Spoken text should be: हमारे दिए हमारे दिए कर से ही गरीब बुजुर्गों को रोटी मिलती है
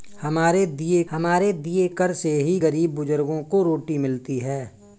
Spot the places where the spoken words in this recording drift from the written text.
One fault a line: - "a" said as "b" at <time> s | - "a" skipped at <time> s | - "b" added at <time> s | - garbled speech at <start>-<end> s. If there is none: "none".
none